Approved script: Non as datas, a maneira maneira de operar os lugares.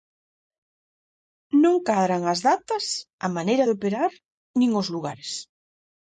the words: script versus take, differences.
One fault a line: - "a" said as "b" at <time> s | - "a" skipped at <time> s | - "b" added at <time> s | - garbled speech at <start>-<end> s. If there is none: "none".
- "cadran" added at 1.9 s
- "maneira" skipped at 3.6 s
- "nin" added at 4.6 s